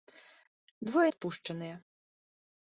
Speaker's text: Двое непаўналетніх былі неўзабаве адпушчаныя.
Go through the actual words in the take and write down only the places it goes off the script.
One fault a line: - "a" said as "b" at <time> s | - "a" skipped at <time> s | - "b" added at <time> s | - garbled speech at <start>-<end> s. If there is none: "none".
- "непаўналетніх былі неўзабаве" skipped at 1.0 s